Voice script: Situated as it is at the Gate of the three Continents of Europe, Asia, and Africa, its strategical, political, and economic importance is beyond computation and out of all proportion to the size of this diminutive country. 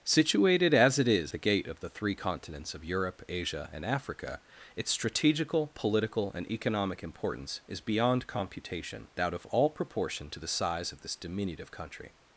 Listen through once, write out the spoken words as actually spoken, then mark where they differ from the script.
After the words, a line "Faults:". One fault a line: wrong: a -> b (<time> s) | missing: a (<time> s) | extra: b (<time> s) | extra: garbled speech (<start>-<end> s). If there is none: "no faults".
Situated as it is the Gate of the three Continents of Europe, Asia, and Africa, its strategical, political, and economic importance is beyond computation out of all proportion to the size of this diminutive country.
Faults:
missing: at (1.3 s)
missing: and (9.1 s)